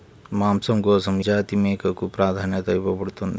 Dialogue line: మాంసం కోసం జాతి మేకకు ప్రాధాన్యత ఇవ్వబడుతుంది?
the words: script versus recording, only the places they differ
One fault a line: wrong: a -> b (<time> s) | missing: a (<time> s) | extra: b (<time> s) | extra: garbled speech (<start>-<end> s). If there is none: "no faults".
no faults